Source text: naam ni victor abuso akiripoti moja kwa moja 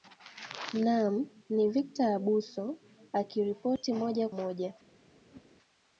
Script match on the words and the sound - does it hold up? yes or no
no